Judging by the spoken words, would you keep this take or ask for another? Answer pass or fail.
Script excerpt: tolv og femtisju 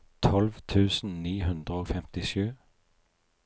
fail